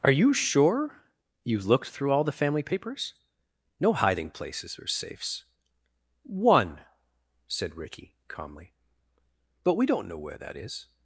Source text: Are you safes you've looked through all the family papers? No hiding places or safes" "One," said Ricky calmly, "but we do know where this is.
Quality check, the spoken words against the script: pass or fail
fail